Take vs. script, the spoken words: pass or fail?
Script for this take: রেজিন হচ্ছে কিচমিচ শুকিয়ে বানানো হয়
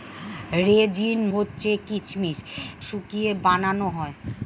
pass